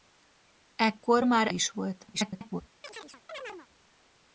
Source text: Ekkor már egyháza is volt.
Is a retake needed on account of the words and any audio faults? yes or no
yes